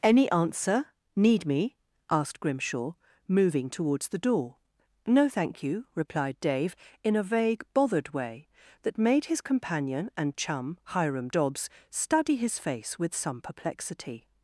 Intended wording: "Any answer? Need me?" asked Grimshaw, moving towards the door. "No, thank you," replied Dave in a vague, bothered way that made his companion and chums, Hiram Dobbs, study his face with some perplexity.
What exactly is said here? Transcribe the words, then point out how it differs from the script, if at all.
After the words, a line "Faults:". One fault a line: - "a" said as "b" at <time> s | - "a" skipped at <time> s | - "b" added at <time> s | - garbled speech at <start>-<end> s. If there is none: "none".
"Any answer? Need me?" asked Grimshaw, moving towards the door. "No, thank you," replied Dave in a vague, bothered way that made his companion and chum, Hiram Dobbs, study his face with some perplexity.
Faults:
- "chums" said as "chum" at 10.3 s